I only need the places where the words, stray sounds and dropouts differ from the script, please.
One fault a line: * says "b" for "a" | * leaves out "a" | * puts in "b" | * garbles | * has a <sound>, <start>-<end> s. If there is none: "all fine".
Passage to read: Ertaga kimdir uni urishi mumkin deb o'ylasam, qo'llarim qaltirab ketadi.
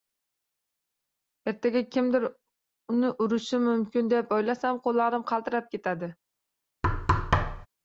* has a thud, 6.8-7.7 s